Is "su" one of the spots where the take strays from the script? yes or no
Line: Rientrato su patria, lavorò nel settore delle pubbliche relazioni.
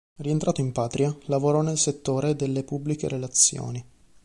yes